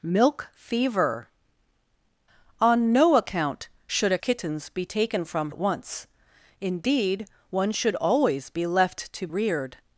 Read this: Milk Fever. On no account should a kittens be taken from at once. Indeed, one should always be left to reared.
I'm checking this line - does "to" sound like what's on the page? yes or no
yes